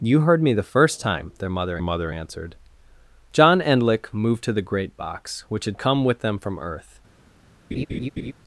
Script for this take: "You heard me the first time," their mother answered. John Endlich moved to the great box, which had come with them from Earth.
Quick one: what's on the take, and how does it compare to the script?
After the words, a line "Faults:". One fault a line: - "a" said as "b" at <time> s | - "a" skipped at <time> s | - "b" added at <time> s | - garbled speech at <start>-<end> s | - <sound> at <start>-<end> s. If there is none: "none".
"You heard me the first time," their mother mother answered. John Endlich moved to the great box, which had come with them from Earth.
Faults:
- "mother" added at 1.8 s
- laugh at 7.7-8.3 s